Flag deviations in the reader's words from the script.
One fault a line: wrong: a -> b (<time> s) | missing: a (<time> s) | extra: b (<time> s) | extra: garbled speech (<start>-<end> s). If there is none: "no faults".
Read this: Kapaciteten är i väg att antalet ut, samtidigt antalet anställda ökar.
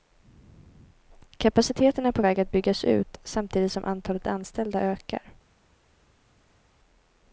wrong: i -> på (2.1 s)
wrong: antalet -> byggas (2.5 s)
extra: som (3.7 s)